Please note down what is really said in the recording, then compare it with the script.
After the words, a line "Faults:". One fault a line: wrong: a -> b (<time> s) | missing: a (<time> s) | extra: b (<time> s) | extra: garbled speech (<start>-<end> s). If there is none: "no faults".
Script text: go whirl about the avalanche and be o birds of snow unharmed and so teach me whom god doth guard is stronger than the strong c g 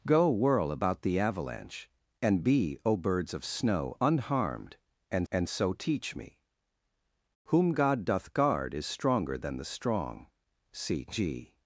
go whirl about the avalanche and be o birds of snow unharmed and and so teach me whom god doth guard is stronger than the strong c g
Faults:
extra: and (5.3 s)